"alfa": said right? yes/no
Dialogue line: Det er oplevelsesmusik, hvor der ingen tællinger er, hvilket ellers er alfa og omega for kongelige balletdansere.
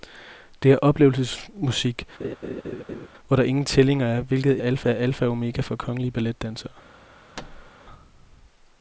yes